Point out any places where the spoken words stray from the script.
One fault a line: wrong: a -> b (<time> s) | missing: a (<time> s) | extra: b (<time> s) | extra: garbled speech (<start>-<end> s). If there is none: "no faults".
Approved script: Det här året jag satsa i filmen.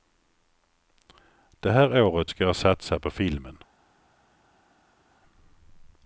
extra: ska (2.3 s)
wrong: i -> på (3.0 s)